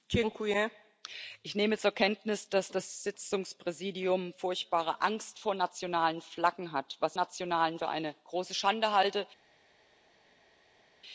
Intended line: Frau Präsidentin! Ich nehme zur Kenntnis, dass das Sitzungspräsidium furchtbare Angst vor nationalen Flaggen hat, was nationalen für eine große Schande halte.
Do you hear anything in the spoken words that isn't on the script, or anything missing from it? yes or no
no